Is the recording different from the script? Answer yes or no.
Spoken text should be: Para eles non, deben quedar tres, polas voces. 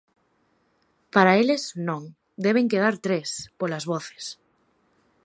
no